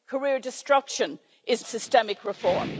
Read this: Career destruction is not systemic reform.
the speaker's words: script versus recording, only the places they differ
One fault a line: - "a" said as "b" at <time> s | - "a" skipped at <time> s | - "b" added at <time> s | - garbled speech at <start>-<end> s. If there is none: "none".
- "not" skipped at 1.6 s